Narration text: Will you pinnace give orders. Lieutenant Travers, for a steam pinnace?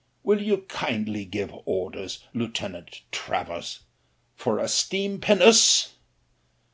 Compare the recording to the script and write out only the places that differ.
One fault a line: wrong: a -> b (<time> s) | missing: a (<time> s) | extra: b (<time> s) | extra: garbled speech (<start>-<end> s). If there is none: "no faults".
wrong: pinnace -> kindly (0.7 s)